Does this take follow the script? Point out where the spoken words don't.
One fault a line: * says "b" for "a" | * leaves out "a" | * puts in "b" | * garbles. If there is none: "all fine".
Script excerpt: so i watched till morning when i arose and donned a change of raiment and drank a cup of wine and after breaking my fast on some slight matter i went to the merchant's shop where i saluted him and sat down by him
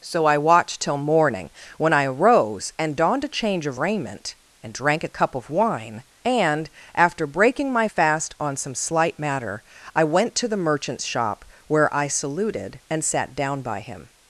* leaves out "him"